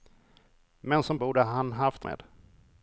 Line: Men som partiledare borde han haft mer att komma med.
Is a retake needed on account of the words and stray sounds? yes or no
yes